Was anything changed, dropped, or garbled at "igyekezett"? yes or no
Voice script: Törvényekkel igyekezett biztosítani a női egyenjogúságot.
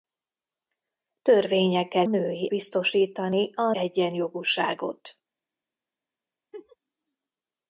yes